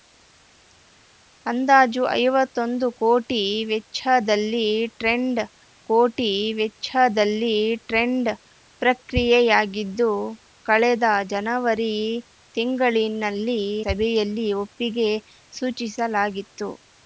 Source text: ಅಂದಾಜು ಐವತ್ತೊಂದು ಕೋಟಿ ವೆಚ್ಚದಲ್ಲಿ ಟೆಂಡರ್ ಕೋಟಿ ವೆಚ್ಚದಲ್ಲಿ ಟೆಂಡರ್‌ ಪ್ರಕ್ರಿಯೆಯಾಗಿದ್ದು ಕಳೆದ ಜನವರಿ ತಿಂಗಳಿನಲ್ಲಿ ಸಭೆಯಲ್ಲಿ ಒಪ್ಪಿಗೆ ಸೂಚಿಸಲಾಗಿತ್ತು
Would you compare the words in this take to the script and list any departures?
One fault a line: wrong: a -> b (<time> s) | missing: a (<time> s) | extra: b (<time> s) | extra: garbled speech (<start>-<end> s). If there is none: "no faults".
no faults